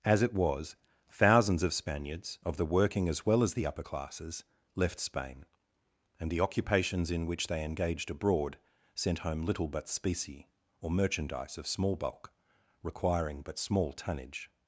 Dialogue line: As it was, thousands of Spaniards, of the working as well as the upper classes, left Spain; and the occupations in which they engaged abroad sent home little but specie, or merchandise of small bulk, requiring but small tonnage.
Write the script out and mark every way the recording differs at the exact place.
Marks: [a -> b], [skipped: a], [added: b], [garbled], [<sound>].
As it was, thousands of Spaniards, of the working as well as the upper classes, left Spain; and the occupations in which they engaged abroad sent home little but specie, or merchandise of small bulk, requiring but small tonnage.